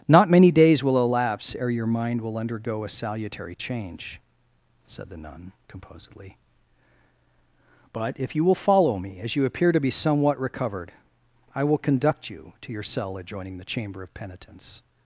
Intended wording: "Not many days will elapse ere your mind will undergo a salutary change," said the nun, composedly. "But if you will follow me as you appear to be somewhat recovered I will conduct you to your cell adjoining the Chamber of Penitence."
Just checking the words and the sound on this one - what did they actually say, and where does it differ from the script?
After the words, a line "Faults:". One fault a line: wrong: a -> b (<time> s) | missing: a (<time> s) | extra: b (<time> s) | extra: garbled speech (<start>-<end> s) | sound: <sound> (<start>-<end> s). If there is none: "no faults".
"Not many days will elapse ere your mind will undergo a salutary change," said the nun, composedly. "But if you will follow me as you appear to be somewhat recovered I will conduct you to your cell adjoining the Chamber of Penitence."
Faults:
no faults